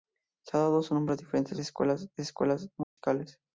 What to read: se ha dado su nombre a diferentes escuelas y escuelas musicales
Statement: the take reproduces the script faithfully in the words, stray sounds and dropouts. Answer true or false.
false